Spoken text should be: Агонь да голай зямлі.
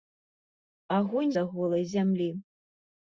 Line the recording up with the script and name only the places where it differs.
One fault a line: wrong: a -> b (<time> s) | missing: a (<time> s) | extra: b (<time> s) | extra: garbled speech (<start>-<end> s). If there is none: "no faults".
no faults